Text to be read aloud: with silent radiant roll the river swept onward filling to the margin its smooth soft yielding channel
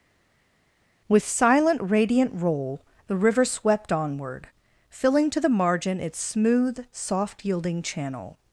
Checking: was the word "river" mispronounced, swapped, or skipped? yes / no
no